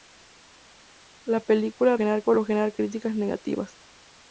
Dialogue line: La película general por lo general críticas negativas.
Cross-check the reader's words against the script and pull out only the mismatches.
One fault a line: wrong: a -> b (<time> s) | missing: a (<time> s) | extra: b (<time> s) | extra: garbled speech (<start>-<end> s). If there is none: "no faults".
no faults